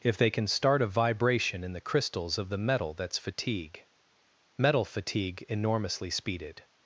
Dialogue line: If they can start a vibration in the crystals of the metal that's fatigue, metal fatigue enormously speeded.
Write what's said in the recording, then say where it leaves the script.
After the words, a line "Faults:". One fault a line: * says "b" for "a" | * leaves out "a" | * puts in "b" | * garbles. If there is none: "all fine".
If they can start a vibration in the crystals of the metal that's fatigue, metal fatigue enormously speeded.
Faults:
all fine